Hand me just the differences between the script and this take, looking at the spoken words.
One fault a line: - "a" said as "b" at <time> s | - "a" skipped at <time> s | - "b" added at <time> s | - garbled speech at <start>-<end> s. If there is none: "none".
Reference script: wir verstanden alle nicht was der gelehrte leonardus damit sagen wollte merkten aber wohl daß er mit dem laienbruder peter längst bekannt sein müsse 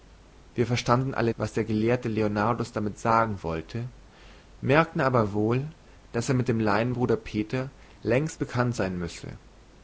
- "nicht" skipped at 1.4 s